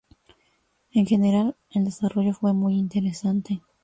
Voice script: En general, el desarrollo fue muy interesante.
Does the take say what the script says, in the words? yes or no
yes